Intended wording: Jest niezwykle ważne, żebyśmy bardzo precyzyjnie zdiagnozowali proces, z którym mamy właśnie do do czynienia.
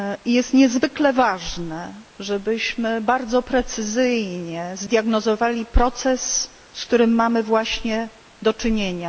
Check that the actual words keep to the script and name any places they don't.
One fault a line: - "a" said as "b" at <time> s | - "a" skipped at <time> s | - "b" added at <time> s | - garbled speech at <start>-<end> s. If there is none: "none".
- "do" skipped at 8.5 s